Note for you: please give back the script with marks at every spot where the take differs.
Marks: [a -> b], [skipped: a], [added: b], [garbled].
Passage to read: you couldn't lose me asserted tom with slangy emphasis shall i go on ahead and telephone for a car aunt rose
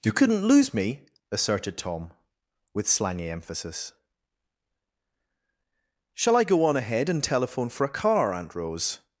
you couldn't lose me asserted tom with slangy emphasis shall i go on ahead and telephone for a car aunt rose